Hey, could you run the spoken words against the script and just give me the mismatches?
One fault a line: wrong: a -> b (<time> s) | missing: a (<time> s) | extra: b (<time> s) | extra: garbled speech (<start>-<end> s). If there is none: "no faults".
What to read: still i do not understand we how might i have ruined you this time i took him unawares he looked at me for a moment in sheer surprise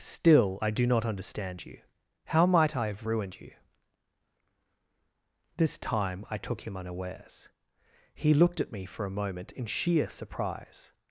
wrong: we -> you (1.6 s)